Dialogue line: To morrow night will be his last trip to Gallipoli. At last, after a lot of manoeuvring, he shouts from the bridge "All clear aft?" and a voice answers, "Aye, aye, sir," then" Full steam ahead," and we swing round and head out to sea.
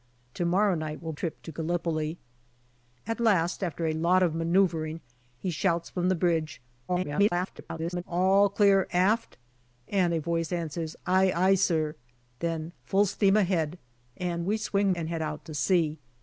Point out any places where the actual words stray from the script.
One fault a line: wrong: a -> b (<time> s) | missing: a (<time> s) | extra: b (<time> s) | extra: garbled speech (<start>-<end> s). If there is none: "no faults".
missing: be his last (1.1 s)
extra: garbled speech (6.9-8.0 s)
missing: round (14.9 s)